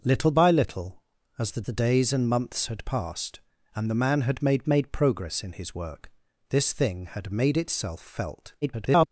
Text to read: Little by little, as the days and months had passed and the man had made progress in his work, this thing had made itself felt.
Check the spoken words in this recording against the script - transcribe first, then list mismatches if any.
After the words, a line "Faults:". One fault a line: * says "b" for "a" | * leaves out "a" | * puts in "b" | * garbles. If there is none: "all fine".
Little by little, as the the days and months had passed and the man had made made progress in his work, this thing had made itself felt. [garbled]
Faults:
* puts in "the"
* puts in "made"
* garbles